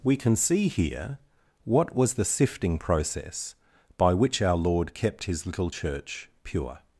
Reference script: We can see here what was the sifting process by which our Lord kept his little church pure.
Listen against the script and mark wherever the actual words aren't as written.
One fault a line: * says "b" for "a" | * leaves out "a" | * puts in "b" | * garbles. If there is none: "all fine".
all fine